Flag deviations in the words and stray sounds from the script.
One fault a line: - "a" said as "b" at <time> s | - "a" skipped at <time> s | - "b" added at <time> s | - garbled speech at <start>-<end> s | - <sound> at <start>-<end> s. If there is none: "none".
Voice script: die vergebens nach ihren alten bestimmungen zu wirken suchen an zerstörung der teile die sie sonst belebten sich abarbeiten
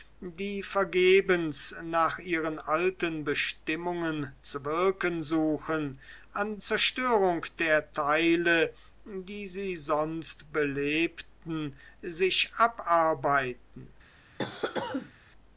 - cough at 14.4-15.1 s